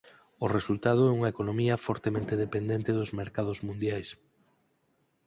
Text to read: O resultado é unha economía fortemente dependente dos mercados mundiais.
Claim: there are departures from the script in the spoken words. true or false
false